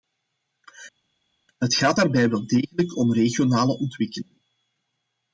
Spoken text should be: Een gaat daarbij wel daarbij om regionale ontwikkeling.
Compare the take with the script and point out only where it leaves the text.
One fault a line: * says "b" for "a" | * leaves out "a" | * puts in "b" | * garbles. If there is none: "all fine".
* says "Het" for "Een"
* says "degelijk" for "daarbij"